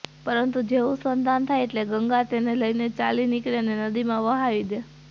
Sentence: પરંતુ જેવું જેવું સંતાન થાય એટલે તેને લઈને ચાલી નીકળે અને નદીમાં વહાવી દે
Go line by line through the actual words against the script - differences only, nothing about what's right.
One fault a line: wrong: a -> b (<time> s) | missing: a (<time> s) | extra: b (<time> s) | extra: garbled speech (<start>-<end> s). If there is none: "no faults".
missing: જેવું (1.0 s)
extra: ગંગા (1.9 s)